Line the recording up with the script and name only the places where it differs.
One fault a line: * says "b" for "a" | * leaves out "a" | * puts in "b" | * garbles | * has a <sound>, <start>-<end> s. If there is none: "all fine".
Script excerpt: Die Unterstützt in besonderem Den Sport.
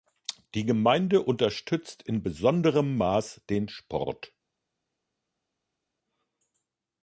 * puts in "Gemeinde"
* puts in "Maß"